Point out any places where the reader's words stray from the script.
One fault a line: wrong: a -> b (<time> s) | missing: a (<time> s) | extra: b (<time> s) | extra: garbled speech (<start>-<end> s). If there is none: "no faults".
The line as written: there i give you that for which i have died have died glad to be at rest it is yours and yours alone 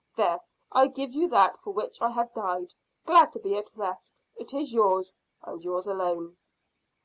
missing: have died (2.7 s)